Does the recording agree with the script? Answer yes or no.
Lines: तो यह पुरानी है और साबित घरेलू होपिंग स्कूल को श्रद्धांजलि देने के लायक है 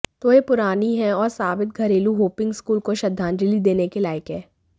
yes